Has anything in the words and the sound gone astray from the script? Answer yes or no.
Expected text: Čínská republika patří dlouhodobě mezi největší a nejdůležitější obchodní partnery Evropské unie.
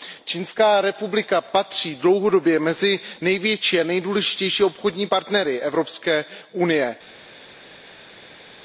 no